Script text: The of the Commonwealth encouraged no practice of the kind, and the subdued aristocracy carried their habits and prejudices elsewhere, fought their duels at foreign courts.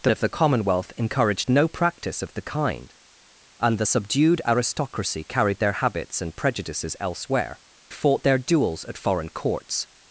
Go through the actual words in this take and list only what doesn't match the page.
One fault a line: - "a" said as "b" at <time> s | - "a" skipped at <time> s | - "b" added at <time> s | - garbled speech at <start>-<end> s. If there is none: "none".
none